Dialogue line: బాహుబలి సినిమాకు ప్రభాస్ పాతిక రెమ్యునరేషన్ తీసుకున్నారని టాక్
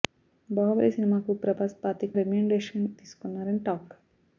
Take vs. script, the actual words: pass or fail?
pass